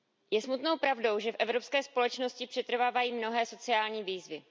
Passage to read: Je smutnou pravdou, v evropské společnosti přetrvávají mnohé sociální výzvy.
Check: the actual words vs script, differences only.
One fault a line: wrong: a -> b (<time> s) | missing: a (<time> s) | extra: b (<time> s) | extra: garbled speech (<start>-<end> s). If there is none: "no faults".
extra: že (1.2 s)